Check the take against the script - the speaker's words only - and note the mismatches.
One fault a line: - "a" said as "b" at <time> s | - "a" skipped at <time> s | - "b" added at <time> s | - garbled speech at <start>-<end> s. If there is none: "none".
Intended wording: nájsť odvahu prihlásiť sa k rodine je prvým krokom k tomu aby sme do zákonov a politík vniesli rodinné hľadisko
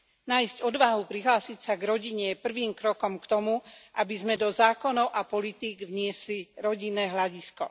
none